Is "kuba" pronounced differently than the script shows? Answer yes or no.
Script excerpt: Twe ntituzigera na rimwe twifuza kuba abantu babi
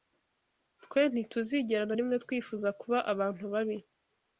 no